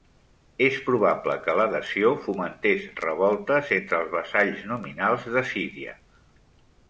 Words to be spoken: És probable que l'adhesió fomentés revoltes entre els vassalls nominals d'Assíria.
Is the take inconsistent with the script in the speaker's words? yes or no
no